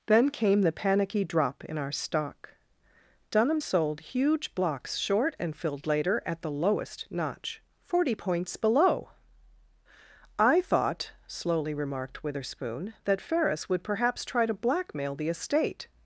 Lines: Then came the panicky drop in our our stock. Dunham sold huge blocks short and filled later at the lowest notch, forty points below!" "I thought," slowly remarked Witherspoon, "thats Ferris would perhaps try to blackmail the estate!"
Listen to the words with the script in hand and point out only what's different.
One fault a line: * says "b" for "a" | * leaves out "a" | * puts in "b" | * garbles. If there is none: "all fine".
* leaves out "our"
* says "that" for "thats"